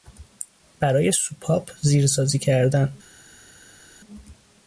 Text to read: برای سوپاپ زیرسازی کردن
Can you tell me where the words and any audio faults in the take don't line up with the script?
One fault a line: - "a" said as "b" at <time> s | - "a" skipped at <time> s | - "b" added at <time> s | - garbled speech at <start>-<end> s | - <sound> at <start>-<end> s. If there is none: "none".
none